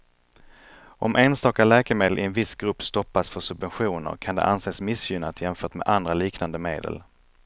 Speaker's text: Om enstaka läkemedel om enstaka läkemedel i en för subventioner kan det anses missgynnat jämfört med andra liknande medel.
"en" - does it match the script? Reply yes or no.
no